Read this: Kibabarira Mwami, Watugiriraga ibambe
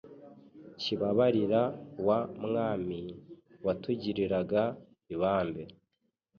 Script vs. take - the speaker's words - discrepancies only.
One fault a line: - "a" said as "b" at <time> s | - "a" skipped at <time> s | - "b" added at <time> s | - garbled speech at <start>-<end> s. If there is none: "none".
- "wa" added at 2.1 s